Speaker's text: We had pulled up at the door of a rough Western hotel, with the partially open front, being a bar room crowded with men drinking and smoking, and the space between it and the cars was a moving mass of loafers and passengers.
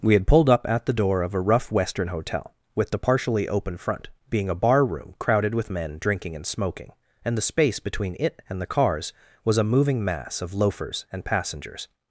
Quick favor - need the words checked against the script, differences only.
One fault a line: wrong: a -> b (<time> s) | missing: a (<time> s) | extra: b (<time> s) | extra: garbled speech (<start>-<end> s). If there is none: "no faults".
no faults